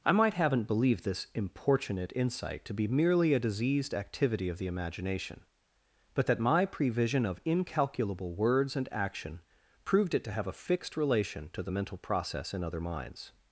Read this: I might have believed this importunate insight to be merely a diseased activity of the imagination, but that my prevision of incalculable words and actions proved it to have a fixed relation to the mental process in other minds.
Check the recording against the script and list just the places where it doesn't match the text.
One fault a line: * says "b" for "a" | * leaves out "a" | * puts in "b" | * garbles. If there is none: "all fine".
* says "haven't" for "have"
* says "action" for "actions"